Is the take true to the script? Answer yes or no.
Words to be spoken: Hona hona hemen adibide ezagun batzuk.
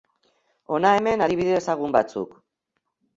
no